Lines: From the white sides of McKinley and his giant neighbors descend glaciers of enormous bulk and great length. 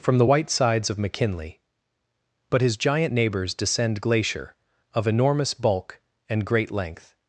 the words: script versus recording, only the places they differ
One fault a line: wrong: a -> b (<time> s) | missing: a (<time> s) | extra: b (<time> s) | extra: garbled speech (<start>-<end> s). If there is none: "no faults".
wrong: and -> but (2.5 s)
wrong: glaciers -> glacier (4.0 s)